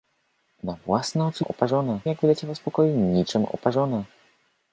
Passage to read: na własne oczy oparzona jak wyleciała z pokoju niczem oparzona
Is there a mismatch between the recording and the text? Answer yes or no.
no